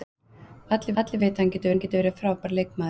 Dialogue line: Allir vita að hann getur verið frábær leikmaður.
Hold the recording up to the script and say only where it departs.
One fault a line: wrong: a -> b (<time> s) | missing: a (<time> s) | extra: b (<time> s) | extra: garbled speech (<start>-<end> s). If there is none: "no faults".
extra: allir (1.0 s)
extra: hann getur (1.7 s)